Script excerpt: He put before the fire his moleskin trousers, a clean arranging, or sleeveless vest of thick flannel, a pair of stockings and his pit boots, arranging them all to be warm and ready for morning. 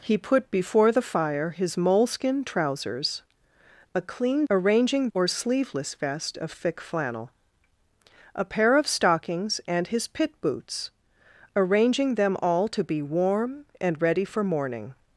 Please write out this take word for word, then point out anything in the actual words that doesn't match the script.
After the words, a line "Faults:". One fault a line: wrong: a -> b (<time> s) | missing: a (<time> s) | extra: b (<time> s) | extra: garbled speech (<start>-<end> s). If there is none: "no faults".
He put before the fire his moleskin trousers, a clean arranging, or sleeveless vest of thick flannel, a pair of stockings and his pit boots, arranging them all to be warm and ready for morning.
Faults:
no faults